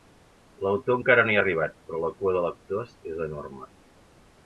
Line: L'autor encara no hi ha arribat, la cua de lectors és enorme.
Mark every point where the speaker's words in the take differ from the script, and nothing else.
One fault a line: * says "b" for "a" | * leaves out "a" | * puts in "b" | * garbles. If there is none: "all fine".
* puts in "però"